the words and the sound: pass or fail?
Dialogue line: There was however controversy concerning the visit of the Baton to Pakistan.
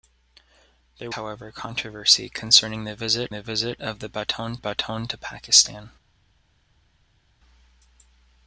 fail